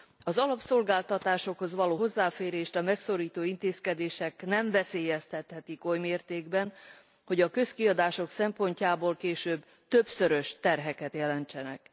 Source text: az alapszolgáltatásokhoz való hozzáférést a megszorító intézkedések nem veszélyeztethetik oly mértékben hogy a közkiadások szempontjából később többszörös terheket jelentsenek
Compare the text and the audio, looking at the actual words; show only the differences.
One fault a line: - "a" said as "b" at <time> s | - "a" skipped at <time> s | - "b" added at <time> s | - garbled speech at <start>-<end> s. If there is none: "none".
none